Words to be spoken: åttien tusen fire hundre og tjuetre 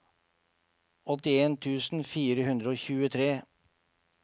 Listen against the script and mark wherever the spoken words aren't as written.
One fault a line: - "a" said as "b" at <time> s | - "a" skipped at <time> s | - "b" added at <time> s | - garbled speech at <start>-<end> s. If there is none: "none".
none